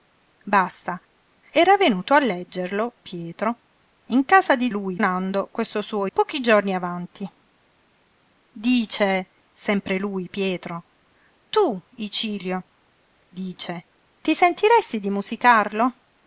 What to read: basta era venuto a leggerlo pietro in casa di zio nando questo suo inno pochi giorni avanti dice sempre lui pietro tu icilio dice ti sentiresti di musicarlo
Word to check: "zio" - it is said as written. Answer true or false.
false